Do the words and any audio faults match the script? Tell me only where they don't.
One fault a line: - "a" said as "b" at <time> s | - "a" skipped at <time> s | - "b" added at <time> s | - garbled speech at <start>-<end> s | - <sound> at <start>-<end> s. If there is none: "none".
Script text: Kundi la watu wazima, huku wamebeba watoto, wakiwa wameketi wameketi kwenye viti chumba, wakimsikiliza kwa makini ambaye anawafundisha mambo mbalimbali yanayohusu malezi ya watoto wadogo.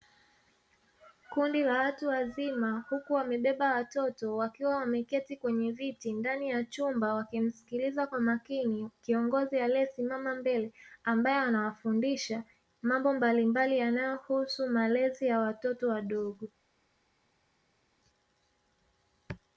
- "wameketi" skipped at 5.4 s
- "ndani ya" added at 6.1 s
- "kiongozi aliyesimama mbele" added at 9.0 s